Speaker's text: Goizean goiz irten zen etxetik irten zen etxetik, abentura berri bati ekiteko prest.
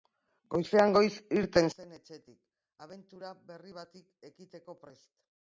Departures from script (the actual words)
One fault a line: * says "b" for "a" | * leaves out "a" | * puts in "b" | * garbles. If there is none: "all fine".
* leaves out "irten zen etxetik"